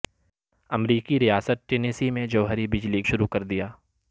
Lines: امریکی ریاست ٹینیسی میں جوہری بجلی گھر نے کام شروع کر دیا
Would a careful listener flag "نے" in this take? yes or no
yes